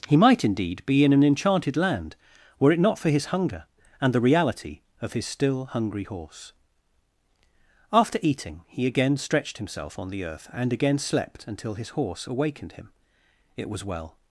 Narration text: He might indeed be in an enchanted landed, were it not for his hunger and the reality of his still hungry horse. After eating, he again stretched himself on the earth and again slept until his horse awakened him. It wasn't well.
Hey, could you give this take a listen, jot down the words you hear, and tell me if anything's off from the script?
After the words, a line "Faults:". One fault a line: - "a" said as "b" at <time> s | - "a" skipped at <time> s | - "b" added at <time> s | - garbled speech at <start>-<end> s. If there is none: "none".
He might indeed be in an enchanted land, were it not for his hunger and the reality of his still hungry horse. After eating, he again stretched himself on the earth and again slept until his horse awakened him. It was well.
Faults:
- "landed" said as "land" at 1.8 s
- "wasn't" said as "was" at 13.7 s